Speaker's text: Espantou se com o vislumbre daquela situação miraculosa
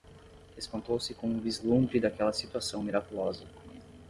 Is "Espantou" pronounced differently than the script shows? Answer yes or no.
no